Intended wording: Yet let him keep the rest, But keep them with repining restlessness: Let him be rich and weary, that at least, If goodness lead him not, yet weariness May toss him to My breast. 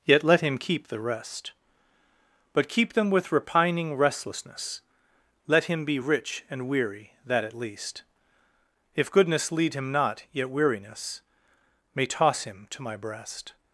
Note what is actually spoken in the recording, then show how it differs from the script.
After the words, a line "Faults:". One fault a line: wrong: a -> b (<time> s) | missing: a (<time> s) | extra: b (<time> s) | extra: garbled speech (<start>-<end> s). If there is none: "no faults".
Yet let him keep the rest, But keep them with repining restlessness: Let him be rich and weary, that at least, If goodness lead him not, yet weariness May toss him to My breast.
Faults:
no faults